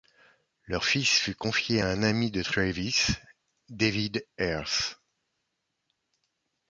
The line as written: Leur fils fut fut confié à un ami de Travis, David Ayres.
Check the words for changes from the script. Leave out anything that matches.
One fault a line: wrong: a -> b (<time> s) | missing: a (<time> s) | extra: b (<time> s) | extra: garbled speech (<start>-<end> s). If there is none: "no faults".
missing: fut (1.4 s)